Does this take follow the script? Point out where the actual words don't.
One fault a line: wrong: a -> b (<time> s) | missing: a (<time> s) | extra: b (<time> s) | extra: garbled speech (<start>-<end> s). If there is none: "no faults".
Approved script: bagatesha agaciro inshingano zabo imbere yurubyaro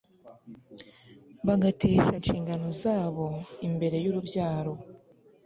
missing: agaciro (2.1 s)